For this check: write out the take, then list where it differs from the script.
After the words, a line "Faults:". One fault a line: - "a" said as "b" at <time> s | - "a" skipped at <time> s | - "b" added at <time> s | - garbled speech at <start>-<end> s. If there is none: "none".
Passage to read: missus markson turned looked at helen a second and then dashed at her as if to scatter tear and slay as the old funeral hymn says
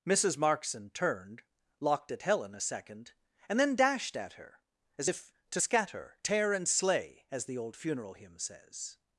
missus markson turned locked at helen a second and then dashed at her as if to scatter tear and slay as the old funeral hymn says
Faults:
- "looked" said as "locked" at 1.8 s